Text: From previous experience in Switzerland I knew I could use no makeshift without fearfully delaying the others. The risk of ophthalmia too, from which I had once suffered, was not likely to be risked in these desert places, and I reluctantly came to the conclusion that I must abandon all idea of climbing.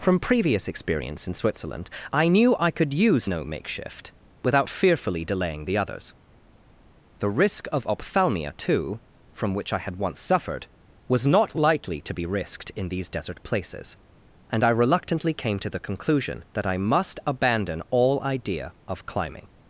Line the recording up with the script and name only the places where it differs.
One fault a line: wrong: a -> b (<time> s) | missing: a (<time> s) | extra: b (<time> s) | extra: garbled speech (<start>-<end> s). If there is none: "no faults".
no faults